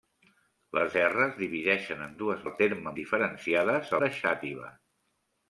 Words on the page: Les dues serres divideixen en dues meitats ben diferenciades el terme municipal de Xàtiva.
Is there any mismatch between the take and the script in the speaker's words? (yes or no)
yes